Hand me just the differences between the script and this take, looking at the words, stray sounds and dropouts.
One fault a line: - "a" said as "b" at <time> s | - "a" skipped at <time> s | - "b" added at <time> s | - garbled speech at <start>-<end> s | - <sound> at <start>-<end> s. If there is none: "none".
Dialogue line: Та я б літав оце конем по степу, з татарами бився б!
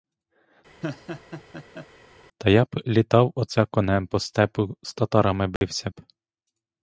- laugh at 0.8-1.9 s
- dropout at 5.6-5.6 s